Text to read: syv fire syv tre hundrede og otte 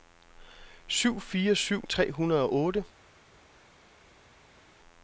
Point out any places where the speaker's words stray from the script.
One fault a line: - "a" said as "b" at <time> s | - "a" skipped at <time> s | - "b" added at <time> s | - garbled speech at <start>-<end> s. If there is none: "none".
none